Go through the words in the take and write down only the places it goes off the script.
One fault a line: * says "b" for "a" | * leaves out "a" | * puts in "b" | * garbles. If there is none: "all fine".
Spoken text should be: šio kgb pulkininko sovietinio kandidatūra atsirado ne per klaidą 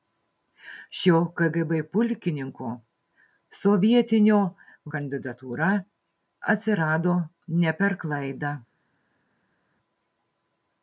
all fine